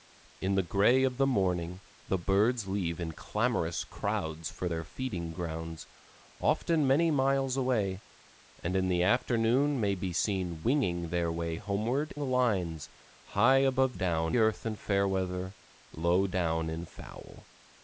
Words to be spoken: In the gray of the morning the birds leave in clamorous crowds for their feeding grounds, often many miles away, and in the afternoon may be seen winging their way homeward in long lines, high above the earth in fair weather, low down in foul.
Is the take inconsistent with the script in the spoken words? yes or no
yes